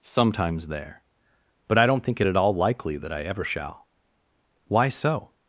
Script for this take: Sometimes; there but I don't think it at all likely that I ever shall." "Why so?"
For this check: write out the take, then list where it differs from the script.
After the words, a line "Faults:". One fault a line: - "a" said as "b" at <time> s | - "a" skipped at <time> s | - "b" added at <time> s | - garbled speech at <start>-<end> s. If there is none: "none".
Sometimes; there but I don't think it at all likely that I ever shall." "Why so?"
Faults:
none